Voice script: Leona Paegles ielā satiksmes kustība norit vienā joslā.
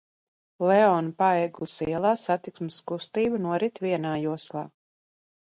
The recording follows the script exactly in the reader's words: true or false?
true